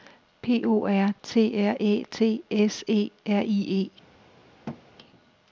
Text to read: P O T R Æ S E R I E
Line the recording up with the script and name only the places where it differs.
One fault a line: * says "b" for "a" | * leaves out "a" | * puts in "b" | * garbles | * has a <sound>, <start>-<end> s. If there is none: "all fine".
* puts in "R"
* puts in "T"
* has a thud, 4.7-4.8 s